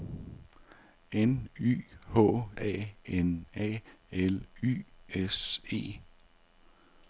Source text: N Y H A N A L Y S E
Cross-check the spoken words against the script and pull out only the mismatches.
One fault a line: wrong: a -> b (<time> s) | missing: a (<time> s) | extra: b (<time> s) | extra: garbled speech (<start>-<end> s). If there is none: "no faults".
no faults